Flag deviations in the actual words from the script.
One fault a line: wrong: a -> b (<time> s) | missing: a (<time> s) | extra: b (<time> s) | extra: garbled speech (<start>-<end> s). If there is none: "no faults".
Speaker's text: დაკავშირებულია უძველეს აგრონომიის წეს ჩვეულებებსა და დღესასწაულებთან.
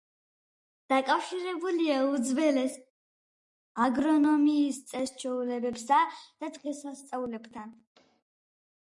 no faults